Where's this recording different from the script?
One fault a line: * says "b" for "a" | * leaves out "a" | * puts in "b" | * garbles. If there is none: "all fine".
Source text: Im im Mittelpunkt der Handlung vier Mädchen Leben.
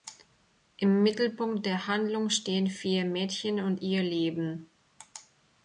* leaves out "im"
* puts in "stehen"
* puts in "und ihr"